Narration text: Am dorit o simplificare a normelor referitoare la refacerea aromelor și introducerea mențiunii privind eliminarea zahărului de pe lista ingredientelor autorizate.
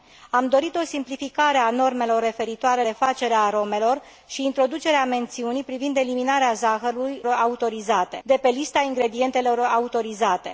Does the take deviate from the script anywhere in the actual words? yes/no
yes